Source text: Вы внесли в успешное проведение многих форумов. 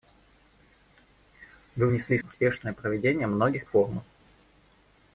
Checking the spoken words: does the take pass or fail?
pass